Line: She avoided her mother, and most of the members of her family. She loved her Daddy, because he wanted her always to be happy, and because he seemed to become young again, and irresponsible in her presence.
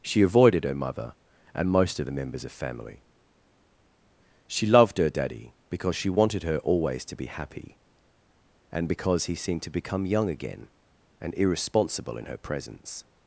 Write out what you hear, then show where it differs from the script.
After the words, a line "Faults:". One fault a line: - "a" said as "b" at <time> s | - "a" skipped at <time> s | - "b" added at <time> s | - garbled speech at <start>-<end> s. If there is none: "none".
She avoided her mother, and most of the members of family. She loved her Daddy, because she wanted her always to be happy, and because he seemed to become young again, and irresponsible in her presence.
Faults:
- "her" skipped at 2.5 s
- "he" said as "she" at 6.0 s